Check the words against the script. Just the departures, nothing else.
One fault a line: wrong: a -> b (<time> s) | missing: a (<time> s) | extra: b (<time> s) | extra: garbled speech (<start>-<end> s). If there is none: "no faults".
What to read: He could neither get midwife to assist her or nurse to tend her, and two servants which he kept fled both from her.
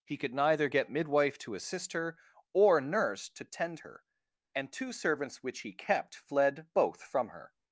no faults